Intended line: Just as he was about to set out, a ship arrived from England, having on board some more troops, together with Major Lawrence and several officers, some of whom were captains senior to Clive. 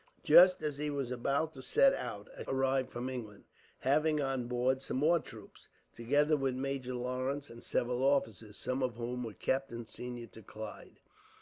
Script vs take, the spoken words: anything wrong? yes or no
yes